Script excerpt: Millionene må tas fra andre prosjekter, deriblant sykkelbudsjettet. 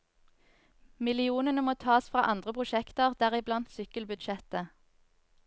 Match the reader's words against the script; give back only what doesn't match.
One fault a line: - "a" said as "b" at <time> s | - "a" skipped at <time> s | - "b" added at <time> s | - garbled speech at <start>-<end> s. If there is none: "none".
none